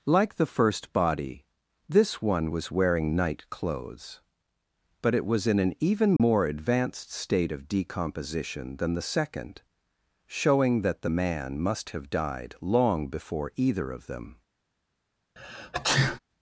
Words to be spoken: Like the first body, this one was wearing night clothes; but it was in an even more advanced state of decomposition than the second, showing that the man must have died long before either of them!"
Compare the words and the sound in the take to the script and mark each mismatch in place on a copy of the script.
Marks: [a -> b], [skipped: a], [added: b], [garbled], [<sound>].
Like the first body, this one was wearing night clothes; but it was in an even more [dropout] advanced state of decomposition than the second, showing that the man must have died long before either of them!" [sneeze]